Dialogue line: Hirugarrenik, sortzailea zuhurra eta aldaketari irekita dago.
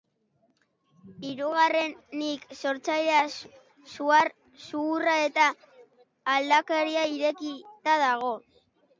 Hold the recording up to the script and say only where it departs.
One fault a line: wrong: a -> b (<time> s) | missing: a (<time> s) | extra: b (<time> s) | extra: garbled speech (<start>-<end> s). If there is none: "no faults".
no faults